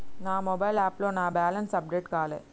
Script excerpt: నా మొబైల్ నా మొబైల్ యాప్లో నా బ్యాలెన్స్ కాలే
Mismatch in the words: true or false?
true